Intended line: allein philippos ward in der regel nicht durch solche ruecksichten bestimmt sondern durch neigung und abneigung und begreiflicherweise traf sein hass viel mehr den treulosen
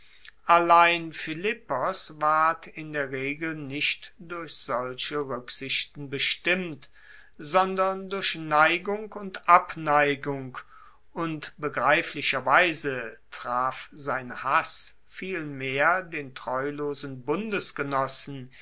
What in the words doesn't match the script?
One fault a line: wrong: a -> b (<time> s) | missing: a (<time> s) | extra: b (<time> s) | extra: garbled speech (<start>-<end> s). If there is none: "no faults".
no faults